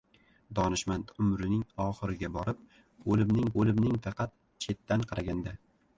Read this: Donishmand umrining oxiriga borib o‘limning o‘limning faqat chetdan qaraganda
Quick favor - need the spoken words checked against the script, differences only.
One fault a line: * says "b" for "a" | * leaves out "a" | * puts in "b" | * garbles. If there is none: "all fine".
all fine